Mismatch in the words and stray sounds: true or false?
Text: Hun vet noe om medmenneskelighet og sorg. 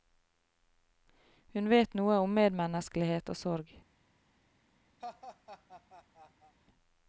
true